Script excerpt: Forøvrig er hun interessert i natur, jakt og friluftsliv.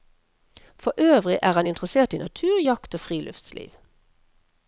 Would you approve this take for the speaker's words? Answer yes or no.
no